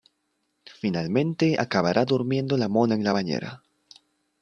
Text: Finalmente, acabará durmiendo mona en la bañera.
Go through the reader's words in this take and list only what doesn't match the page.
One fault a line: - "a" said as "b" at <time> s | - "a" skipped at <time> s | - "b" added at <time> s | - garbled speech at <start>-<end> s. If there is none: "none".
- "la" added at 2.6 s